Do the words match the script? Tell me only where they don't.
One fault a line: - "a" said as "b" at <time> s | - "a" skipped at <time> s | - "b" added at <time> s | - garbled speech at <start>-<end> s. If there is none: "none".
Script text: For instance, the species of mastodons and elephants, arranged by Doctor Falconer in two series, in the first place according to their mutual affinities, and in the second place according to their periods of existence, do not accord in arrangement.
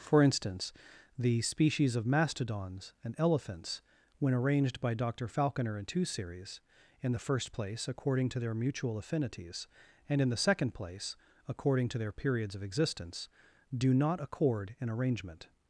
- "when" added at 4.2 s